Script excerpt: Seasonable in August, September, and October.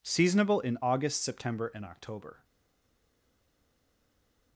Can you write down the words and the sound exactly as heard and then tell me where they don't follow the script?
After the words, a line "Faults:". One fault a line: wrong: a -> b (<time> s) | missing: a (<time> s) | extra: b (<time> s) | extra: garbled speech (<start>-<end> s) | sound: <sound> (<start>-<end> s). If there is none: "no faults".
Seasonable in August, September, and October.
Faults:
no faults